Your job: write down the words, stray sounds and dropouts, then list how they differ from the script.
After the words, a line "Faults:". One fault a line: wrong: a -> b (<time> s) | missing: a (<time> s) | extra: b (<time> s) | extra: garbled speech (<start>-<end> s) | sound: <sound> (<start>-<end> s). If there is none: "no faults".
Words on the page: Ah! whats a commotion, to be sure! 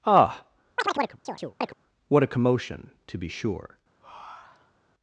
Ah! what a commotion, to be sure!
Faults:
sound: chirp (0.8-1.7 s)
wrong: whats -> what (2.1 s)
sound: breath (4.0-4.8 s)